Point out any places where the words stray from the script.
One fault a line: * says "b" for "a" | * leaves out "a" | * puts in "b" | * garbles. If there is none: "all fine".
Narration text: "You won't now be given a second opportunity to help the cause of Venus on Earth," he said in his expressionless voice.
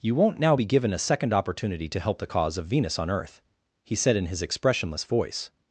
all fine